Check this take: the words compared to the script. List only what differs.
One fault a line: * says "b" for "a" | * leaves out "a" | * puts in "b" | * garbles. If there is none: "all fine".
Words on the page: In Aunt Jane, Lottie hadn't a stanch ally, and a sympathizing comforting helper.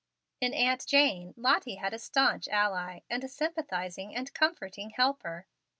* says "had" for "hadn't"
* puts in "and"